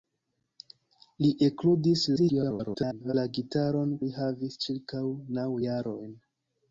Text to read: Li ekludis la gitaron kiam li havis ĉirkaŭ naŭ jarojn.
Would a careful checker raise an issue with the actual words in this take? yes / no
yes